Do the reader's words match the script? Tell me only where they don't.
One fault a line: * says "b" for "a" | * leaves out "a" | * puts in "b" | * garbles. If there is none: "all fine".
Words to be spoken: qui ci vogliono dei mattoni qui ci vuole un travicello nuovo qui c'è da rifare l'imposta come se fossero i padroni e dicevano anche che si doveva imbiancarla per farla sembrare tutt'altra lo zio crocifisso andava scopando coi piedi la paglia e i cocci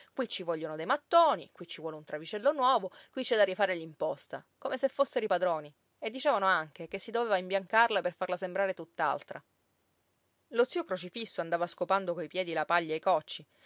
all fine